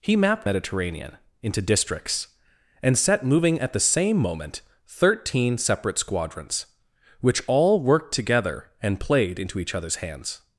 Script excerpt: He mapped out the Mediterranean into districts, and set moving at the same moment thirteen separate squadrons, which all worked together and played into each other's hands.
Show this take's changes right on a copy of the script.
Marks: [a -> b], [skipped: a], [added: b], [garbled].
He mapped [skipped: out the] Mediterranean into districts, and set moving at the same moment thirteen separate squadrons, which all worked together and played into each other's hands.